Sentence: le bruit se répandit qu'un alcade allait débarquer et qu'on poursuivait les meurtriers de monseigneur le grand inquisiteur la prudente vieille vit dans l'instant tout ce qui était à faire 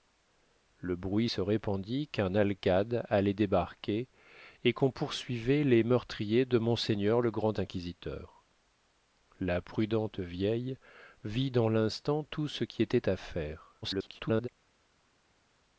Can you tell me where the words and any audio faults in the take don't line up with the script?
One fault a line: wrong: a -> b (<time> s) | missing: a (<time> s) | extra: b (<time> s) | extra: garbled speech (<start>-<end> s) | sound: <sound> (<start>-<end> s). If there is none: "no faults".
extra: garbled speech (13.8-14.5 s)